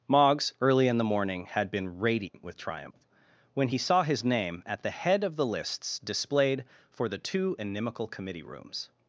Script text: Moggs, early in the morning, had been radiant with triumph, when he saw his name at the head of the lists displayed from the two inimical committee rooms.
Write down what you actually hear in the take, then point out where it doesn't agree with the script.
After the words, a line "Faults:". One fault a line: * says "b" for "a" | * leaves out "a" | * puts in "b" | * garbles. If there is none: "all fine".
Moggs, early in the morning, had been radiant with triumph, when he saw his name at the head of the lists displayed for the two inimical committee rooms.
Faults:
* says "for" for "from"